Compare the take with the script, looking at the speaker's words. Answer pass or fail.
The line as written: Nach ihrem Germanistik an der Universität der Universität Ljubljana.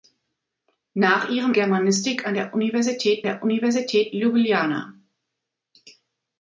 pass